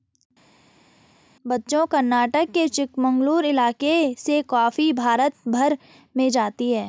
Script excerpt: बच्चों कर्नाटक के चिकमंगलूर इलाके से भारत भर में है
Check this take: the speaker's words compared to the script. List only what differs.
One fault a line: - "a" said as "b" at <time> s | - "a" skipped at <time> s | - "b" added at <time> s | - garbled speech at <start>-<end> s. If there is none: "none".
- "कॉफी" added at 4.5 s
- "जाती" added at 6.3 s